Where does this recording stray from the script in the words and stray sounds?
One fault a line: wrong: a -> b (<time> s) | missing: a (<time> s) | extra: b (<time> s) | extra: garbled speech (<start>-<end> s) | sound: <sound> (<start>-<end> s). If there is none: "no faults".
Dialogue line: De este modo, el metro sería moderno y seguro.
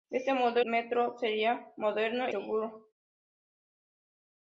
missing: el (0.6 s)
missing: y (2.3 s)